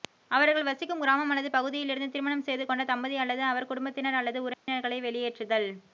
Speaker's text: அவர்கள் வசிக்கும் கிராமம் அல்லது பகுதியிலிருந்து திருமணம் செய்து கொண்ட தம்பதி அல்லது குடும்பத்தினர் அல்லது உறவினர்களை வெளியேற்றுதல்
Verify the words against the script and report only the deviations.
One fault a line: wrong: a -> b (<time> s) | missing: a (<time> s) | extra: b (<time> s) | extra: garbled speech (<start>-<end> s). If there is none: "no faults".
extra: அவர் (3.5 s)